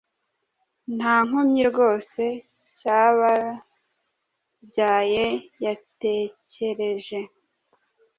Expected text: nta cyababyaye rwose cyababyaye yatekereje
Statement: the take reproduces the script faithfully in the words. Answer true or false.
false